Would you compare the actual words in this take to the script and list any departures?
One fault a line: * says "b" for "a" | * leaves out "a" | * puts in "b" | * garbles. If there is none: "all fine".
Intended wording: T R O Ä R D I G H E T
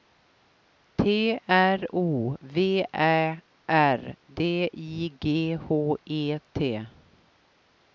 * puts in "V"